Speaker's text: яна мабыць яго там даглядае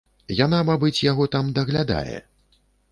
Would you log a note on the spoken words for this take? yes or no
no